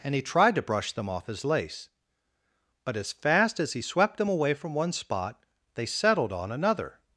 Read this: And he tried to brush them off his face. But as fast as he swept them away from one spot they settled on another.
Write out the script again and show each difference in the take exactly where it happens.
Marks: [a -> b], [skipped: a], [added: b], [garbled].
And he tried to brush them off his [face. -> lace] But as fast as he swept them away from one spot they settled on another.